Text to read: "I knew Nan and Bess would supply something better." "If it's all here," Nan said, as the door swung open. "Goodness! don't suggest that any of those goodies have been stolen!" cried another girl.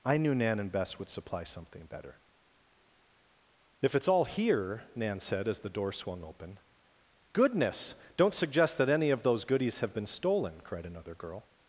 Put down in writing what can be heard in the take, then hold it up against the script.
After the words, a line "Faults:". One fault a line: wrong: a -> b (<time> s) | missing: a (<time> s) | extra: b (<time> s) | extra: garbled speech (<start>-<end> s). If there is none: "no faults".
"I knew Nan and Bess would supply something better." "If it's all here," Nan said, as the door swung open. "Goodness! don't suggest that any of those goodies have been stolen!" cried another girl.
Faults:
no faults